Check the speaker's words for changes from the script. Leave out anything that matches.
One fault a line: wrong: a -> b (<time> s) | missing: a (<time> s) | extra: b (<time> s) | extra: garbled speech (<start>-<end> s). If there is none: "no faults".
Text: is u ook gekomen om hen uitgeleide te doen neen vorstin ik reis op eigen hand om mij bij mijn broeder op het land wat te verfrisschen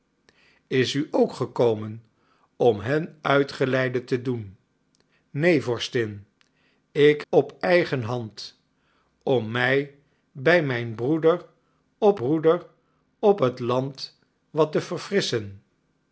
missing: reis (7.2 s)
extra: broeder op (12.1 s)